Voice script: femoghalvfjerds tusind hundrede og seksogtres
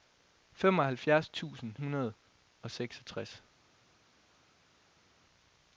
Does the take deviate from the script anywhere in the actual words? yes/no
no